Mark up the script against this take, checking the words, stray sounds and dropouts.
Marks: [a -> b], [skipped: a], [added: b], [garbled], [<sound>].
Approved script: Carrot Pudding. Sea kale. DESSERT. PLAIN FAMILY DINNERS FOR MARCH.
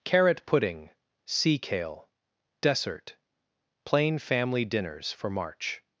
Carrot Pudding. Sea kale. DESSERT. PLAIN FAMILY DINNERS FOR MARCH.